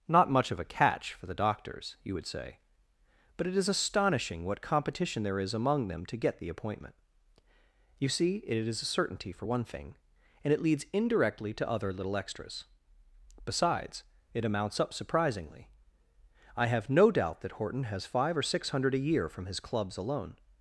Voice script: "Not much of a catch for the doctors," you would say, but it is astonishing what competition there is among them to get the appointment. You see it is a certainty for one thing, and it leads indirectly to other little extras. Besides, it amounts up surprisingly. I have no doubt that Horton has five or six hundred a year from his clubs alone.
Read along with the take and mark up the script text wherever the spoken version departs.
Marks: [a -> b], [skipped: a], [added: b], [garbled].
"Not much of a catch for the doctors," you would say, but it is astonishing what competition there is among them to get the appointment. You see it is a certainty for one thing, and it leads indirectly to other little extras. Besides, it amounts up surprisingly. I have no doubt that Horton has five or six hundred a year from his clubs alone.